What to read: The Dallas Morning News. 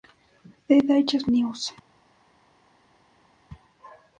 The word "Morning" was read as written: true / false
false